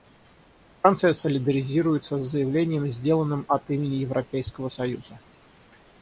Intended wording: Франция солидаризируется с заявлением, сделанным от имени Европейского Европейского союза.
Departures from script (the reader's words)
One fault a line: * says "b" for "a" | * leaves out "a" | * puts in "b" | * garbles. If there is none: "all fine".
* leaves out "Европейского"